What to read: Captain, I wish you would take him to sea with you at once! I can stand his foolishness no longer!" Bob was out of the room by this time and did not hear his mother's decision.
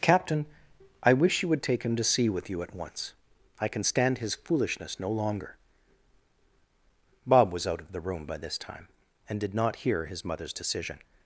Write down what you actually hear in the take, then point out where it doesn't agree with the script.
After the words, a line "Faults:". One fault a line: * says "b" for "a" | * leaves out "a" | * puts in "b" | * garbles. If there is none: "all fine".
Captain, I wish you would take him to sea with you at once! I can stand his foolishness no longer!" Bob was out of the room by this time and did not hear his mother's decision.
Faults:
all fine